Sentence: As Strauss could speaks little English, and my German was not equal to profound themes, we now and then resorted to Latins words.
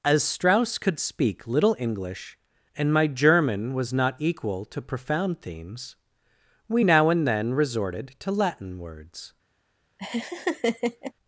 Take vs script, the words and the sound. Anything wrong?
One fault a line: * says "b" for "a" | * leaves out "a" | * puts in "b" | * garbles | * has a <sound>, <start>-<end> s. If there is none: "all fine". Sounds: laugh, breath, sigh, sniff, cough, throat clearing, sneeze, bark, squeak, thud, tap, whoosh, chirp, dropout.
* says "speak" for "speaks"
* says "Latin" for "Latins"
* has a laugh, 10.0-11.1 s